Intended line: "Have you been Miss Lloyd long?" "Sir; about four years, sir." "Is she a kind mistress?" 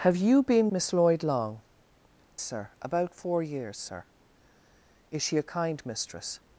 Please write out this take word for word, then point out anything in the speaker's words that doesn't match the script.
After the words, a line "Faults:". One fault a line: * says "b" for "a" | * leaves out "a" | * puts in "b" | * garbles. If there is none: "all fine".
"Have you been Miss Lloyd long?" "Sir; about four years, sir." "Is she a kind mistress?"
Faults:
all fine